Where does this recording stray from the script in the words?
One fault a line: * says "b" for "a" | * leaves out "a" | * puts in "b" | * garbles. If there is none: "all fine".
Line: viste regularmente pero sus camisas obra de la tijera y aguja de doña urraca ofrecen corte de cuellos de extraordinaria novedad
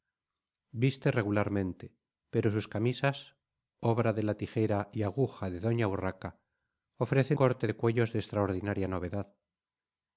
all fine